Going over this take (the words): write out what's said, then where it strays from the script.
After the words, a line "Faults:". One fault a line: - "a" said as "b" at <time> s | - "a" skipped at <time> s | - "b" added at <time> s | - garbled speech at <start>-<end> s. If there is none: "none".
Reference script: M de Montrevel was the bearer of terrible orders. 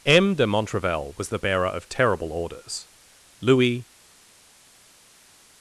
M de Montrevel was the bearer of terrible orders. Louis
Faults:
- "Louis" added at 3.4 s